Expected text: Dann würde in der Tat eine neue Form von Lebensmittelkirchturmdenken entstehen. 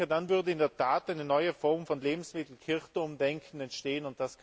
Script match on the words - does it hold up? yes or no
yes